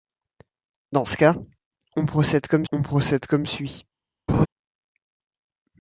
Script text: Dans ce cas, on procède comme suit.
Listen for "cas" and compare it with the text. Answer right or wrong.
right